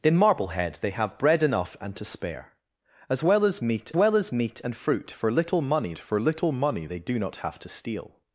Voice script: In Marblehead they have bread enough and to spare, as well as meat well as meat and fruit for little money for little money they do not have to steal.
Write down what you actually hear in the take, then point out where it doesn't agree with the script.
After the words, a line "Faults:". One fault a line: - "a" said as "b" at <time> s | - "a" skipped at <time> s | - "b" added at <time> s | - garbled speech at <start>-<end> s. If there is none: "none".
In Marblehead they have bread enough and to spare, as well as meat well as meat and fruit for little money for little money they do not have to steal.
Faults:
none